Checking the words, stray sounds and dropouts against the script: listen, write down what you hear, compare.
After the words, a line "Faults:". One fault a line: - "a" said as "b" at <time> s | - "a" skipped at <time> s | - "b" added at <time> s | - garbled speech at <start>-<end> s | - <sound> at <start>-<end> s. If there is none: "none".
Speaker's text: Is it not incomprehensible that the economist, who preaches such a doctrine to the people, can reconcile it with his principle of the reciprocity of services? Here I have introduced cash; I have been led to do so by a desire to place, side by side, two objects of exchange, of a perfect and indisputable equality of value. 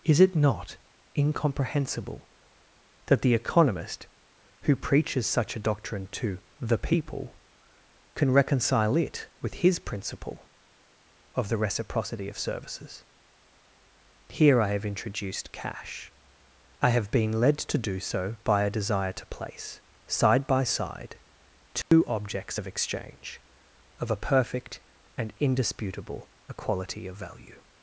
Is it not incomprehensible that the economist, who preaches such a doctrine to the people, can reconcile it with his principle of the reciprocity of services? Here I have introduced cash; I have been led to do so by a desire to place, side by side, two objects of exchange, of a perfect and indisputable equality of value.
Faults:
- dropout at 21.8-21.9 s